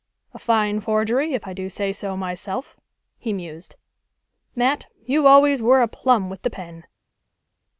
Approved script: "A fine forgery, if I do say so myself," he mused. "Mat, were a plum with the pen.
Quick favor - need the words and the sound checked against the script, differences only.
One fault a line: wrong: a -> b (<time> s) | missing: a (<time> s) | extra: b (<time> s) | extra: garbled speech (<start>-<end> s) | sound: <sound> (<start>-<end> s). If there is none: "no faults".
extra: you always (5.0 s)